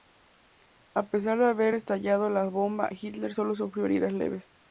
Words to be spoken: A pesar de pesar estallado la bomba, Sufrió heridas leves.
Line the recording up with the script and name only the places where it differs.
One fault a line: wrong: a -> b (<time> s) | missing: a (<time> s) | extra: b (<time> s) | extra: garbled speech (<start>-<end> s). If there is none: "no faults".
wrong: pesar -> haber (1.4 s)
extra: Hitler solo (2.9 s)